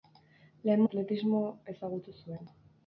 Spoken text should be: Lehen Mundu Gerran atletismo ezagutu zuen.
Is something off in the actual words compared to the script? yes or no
yes